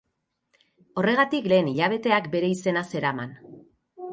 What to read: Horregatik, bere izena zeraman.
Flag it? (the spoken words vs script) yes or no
yes